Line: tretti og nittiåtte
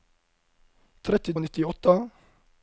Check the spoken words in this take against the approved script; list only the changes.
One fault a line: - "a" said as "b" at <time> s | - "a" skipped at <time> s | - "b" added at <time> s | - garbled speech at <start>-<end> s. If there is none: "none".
none